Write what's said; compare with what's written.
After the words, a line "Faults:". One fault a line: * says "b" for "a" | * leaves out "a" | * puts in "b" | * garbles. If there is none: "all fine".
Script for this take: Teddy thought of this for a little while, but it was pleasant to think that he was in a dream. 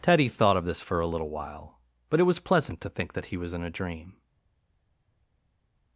Teddy thought of this for a little while, but it was pleasant to think that he was in a dream.
Faults:
all fine